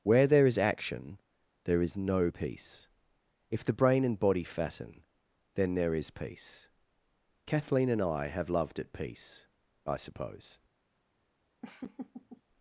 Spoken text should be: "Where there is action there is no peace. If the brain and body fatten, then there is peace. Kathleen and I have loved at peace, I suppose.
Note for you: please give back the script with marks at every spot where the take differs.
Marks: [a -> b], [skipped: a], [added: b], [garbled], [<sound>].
"Where there is action there is no peace. If the brain and body fatten, then there is peace. Kathleen and I have loved at peace, I suppose. [laugh]